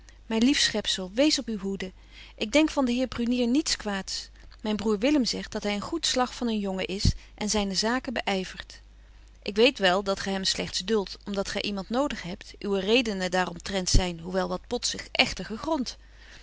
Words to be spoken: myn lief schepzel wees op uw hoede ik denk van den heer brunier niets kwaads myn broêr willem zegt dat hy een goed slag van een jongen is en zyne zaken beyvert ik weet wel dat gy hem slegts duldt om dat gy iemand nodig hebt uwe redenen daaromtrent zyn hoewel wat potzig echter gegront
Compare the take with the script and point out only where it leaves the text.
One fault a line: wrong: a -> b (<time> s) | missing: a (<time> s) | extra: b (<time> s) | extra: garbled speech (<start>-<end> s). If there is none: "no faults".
no faults